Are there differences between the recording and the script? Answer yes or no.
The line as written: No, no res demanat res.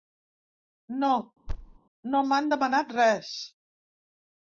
yes